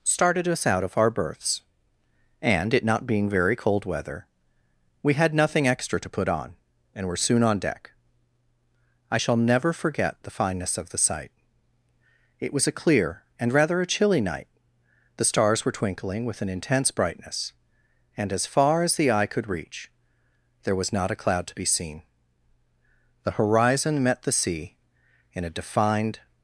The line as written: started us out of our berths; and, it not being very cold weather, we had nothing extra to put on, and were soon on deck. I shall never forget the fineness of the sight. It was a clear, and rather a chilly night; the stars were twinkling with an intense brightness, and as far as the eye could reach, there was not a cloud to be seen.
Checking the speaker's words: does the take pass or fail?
fail